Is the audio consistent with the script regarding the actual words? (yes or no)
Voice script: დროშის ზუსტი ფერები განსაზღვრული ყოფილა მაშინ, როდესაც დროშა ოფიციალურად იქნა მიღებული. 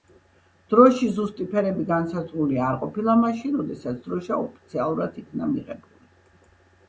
no